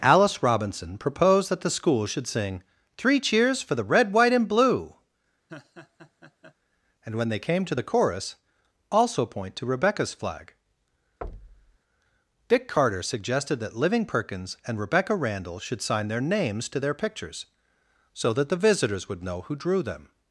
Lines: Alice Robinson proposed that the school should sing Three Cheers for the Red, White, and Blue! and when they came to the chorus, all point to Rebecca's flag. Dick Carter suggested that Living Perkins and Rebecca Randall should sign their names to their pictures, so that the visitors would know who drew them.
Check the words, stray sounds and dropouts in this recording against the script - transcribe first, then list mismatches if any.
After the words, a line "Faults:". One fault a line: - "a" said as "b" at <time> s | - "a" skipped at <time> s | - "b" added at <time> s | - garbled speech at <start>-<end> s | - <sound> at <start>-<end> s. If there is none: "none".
Alice Robinson proposed that the school should sing Three Cheers for the Red, White, and Blue! and when they came to the chorus, also point to Rebecca's flag. Dick Carter suggested that Living Perkins and Rebecca Randall should sign their names to their pictures, so that the visitors would know who drew them.
Faults:
- laugh at 5.5-6.5 s
- "all" said as "also" at 8.9 s
- thud at 11.2-11.8 s